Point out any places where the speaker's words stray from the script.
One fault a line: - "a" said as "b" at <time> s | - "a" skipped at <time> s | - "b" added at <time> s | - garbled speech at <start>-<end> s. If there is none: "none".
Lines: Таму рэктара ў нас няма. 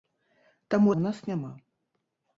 - "рэктара" skipped at 0.9 s